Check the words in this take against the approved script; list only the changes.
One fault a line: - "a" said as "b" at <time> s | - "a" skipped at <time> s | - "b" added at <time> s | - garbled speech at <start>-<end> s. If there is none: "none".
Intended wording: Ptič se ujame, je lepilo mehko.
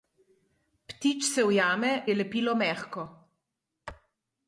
none